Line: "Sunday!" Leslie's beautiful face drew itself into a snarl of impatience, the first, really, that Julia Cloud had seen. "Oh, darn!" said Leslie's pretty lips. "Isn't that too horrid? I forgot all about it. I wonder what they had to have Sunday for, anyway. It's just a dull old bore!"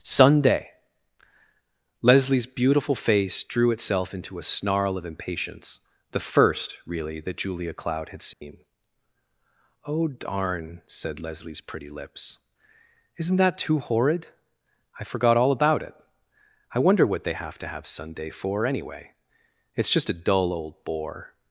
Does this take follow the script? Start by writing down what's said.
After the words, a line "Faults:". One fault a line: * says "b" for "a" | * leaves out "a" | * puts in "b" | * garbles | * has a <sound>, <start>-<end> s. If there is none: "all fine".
"Sunday!" Leslie's beautiful face drew itself into a snarl of impatience, the first, really, that Julia Cloud had seen. "Oh, darn!" said Leslie's pretty lips. "Isn't that too horrid? I forgot all about it. I wonder what they have to have Sunday for, anyway. It's just a dull old bore!"
Faults:
* has a dropout, 8.3-8.4 s
* says "have" for "had"